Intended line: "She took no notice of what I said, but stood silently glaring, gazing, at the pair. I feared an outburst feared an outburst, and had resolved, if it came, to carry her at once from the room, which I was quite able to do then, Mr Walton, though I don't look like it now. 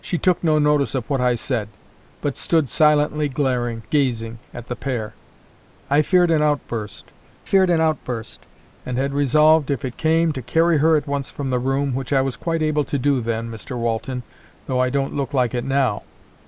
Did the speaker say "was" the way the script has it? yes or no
yes